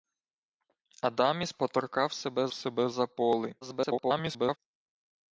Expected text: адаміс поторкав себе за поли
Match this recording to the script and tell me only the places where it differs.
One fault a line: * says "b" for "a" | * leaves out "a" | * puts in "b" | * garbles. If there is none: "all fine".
* puts in "себе"
* garbles